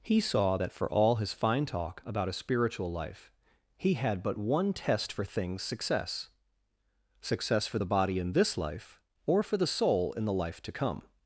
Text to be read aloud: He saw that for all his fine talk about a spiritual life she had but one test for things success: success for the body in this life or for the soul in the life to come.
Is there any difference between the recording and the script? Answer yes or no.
yes